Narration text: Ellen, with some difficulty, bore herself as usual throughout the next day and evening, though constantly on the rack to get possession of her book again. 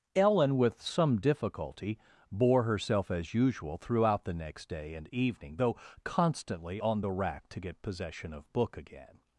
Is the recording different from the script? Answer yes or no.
yes